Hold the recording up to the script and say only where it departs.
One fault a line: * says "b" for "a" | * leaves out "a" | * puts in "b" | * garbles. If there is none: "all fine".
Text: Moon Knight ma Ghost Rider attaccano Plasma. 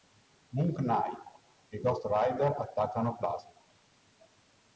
* says "e" for "ma"